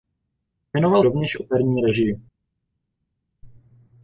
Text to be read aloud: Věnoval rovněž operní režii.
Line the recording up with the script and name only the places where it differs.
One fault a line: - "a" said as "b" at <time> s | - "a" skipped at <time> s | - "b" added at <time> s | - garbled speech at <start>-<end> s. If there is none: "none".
none